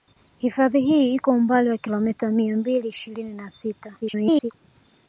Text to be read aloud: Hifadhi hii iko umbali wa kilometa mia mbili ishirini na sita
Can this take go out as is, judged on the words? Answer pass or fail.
fail